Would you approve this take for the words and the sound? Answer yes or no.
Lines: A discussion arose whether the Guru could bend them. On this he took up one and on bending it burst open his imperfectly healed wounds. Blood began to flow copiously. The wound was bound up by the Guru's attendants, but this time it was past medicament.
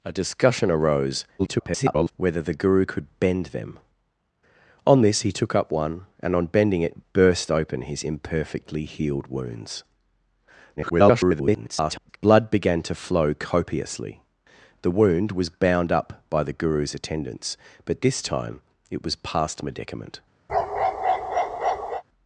no